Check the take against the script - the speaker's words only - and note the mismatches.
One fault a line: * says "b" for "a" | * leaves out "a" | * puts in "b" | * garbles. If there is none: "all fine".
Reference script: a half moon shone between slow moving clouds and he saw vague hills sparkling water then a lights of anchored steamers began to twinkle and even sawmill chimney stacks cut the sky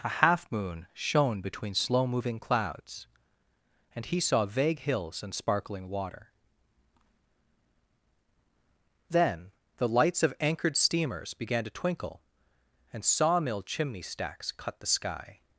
* puts in "and"
* says "the" for "a"
* leaves out "even"